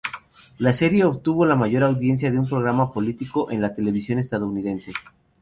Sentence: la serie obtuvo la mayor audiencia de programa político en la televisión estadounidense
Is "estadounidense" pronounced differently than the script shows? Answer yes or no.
no